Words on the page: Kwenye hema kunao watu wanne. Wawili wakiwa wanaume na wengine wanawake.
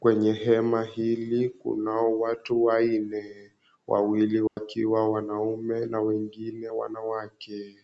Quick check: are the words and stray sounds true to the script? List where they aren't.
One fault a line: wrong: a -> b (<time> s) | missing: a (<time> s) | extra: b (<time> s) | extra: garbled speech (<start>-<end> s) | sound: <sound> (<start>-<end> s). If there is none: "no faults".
extra: hili (0.8 s)
sound: dropout (4.5-4.6 s)